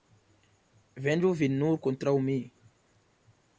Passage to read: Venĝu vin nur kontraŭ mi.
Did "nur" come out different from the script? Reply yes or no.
no